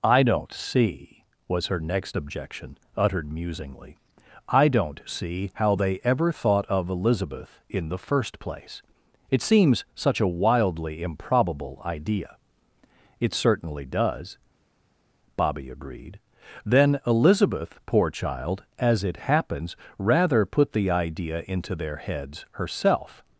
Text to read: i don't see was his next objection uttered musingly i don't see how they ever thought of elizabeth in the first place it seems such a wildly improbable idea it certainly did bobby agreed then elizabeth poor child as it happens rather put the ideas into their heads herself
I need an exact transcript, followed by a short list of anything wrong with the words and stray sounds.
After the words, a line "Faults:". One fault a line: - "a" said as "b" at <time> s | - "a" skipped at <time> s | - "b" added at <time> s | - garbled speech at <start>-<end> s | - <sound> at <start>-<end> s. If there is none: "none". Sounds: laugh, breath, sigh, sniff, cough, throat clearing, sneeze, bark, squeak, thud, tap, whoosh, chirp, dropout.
i don't see was her next objection uttered musingly i don't see how they ever thought of elizabeth in the first place it seems such a wildly improbable idea it certainly does bobby agreed then elizabeth poor child as it happens rather put the idea into their heads herself
Faults:
- "his" said as "her" at 1.7 s
- "did" said as "does" at 13.9 s
- "ideas" said as "idea" at 20.9 s